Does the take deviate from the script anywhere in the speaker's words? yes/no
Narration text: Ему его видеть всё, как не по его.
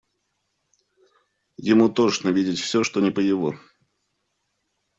yes